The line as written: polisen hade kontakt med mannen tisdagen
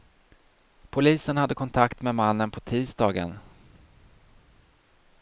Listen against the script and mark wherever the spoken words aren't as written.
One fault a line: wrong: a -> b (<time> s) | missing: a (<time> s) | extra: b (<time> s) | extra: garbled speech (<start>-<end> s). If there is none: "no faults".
extra: på (2.5 s)